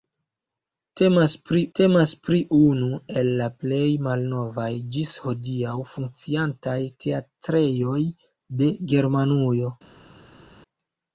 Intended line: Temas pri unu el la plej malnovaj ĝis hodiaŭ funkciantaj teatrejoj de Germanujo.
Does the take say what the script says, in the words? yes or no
no